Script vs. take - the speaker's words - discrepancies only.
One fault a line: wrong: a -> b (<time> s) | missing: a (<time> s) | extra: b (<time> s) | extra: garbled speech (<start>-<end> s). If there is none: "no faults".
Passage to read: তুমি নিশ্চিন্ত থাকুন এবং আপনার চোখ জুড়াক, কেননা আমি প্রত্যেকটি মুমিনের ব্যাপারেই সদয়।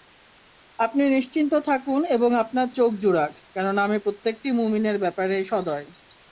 wrong: তুমি -> আপনি (0.8 s)